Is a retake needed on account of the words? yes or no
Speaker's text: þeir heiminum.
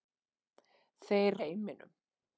no